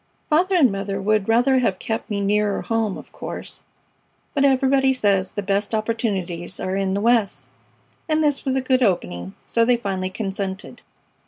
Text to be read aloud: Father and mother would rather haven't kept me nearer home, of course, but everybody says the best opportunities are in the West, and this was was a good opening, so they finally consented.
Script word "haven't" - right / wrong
wrong